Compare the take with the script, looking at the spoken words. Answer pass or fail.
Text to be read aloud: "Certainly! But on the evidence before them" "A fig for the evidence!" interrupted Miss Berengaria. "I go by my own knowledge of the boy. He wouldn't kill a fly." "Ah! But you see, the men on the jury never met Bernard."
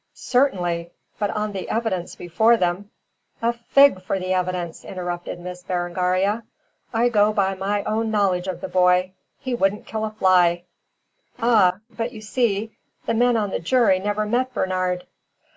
pass